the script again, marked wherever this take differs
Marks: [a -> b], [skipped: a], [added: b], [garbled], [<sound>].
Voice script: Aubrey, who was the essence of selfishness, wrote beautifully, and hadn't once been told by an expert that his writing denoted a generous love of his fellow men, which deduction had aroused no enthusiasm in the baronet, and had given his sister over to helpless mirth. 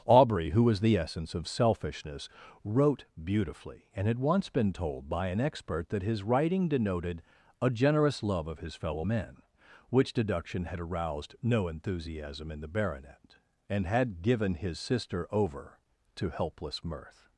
Aubrey, who was the essence of selfishness, wrote beautifully, and [hadn't -> had] once been told by an expert that his writing denoted a generous love of his fellow men, which deduction had aroused no enthusiasm in the baronet, and had given his sister over to helpless mirth.